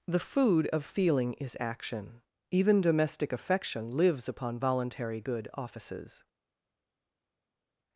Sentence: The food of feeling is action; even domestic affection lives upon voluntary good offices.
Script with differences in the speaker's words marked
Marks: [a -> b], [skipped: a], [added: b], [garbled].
The food of feeling is action; even domestic affection lives upon voluntary good offices.